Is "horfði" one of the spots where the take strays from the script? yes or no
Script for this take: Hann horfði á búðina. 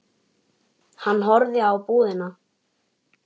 no